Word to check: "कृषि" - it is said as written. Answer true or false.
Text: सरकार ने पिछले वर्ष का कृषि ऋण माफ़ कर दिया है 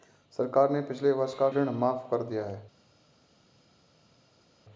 false